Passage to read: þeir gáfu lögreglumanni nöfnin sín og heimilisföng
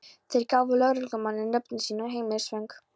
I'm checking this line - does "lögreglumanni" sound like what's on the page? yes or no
yes